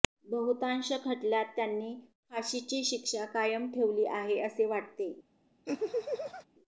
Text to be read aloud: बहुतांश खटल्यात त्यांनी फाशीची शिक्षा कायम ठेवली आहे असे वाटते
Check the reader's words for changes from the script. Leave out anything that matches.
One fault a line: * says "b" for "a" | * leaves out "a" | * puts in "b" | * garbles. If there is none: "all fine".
all fine